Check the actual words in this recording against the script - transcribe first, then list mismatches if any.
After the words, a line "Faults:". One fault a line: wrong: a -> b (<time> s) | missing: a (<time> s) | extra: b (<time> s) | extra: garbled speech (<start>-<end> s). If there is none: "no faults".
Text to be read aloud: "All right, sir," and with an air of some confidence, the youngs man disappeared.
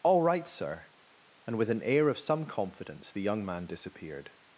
"All right, sir," and with an air of some confidence, the young man disappeared.
Faults:
wrong: youngs -> young (3.2 s)